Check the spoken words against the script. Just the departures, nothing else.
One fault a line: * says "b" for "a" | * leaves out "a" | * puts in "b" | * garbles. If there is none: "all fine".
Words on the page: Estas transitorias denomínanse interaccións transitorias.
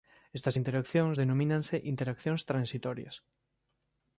* says "interaccións" for "transitorias"